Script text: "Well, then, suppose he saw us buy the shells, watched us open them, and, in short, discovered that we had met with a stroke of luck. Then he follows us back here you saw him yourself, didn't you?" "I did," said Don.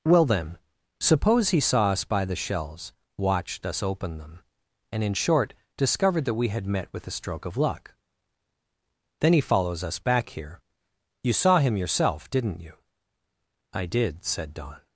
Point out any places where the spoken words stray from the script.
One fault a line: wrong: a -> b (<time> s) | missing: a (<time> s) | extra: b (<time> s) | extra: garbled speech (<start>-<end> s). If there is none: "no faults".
no faults